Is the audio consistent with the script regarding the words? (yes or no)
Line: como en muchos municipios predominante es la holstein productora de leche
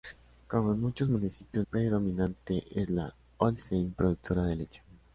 yes